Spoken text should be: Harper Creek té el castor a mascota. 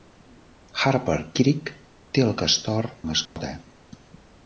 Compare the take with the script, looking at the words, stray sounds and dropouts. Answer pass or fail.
fail